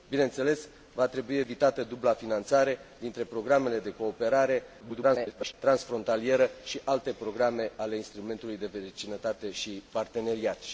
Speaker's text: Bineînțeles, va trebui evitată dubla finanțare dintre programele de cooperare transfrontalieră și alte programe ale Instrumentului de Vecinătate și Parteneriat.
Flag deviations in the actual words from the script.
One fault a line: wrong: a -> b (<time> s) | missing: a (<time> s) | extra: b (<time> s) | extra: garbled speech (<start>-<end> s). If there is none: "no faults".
extra: garbled speech (4.8-5.5 s)